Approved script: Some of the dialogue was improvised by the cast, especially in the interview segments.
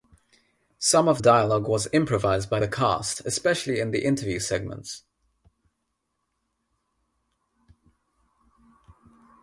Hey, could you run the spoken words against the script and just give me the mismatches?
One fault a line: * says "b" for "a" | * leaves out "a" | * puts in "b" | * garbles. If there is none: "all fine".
* leaves out "the"